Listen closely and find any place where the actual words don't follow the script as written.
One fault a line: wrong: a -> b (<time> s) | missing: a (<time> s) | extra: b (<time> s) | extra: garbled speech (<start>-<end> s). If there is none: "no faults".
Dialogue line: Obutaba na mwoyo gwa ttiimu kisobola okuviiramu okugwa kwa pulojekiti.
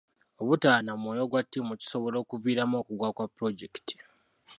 no faults